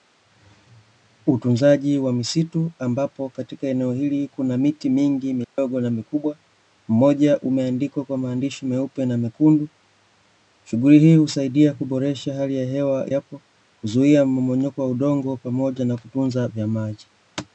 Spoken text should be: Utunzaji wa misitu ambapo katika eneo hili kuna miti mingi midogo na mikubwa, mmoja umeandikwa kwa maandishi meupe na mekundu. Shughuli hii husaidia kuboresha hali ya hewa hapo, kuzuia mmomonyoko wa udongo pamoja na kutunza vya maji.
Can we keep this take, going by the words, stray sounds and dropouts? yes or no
no